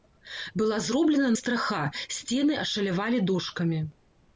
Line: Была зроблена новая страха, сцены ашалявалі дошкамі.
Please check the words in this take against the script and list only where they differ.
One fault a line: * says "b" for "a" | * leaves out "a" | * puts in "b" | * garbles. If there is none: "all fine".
* leaves out "новая"